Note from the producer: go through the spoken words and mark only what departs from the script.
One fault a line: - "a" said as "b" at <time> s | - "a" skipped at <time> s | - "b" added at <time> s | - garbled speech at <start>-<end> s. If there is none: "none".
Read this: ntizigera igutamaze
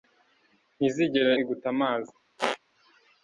none